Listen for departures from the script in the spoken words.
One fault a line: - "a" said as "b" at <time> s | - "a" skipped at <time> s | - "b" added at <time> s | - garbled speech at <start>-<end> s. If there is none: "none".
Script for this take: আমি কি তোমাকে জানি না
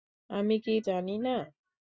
- "তোমাকে" skipped at 0.7 s